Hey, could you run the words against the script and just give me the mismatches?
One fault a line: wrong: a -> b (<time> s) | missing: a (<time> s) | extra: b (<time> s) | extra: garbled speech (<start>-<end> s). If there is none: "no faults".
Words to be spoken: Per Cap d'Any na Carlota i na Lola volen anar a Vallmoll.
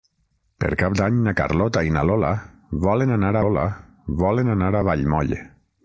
extra: Lola volen anar (3.5 s)